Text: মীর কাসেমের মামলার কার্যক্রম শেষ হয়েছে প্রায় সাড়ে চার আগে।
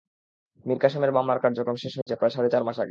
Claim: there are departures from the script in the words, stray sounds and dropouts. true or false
true